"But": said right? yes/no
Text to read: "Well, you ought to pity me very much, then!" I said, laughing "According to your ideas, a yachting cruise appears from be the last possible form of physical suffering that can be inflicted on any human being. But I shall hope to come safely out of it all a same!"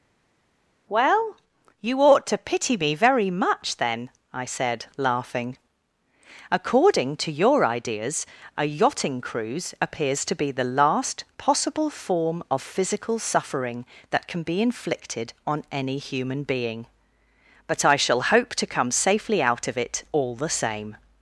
yes